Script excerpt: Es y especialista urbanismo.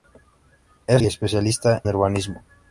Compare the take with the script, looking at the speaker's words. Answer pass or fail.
pass